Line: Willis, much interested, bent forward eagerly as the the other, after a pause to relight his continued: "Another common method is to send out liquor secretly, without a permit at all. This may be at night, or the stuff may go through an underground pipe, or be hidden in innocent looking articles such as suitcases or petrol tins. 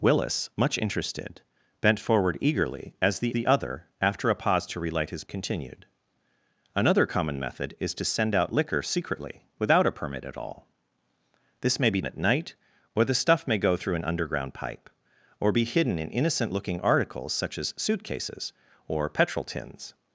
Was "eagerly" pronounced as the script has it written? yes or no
yes